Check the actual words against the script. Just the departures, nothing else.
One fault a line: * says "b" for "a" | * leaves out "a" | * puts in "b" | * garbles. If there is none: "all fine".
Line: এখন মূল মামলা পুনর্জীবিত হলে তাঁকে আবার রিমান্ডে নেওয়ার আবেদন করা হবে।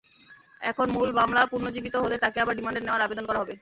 all fine